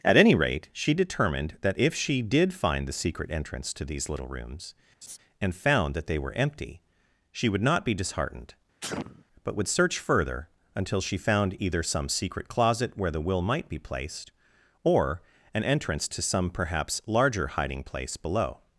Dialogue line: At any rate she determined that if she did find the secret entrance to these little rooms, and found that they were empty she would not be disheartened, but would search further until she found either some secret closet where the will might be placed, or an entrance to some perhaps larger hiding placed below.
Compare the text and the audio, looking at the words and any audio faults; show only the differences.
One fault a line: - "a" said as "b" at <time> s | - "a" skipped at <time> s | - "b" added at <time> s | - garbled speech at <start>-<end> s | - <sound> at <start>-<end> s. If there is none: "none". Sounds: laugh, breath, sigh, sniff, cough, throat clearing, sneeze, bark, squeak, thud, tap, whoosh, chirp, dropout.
- laugh at 5.0-5.2 s
- sneeze at 8.8-9.2 s
- "placed" said as "place" at 17.8 s